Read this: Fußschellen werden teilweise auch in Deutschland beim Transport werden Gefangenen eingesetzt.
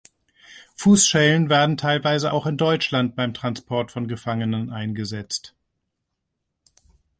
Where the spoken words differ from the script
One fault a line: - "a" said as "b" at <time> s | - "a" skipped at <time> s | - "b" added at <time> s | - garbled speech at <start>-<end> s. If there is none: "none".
- "werden" said as "von" at 3.9 s